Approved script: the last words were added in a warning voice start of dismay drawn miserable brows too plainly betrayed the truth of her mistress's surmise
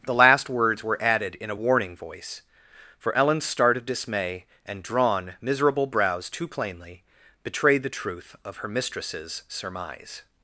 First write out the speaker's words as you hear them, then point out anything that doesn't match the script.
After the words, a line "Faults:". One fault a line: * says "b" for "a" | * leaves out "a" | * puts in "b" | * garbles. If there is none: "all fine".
the last words were added in a warning voice for ellen's start of dismay and drawn miserable brows too plainly betrayed the truth of her mistress's surmise
Faults:
* puts in "for ellen's"
* puts in "and"